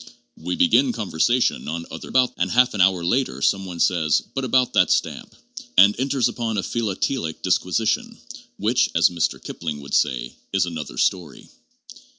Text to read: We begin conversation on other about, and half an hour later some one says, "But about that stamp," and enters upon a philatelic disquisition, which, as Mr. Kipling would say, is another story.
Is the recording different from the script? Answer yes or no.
no